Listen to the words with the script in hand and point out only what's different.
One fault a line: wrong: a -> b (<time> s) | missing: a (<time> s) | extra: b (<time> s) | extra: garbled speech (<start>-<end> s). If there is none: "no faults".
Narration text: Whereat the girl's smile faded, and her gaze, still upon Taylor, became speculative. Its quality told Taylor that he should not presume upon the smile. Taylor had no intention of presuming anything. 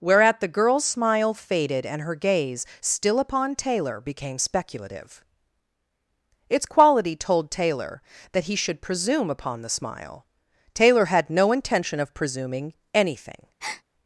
missing: not (8.8 s)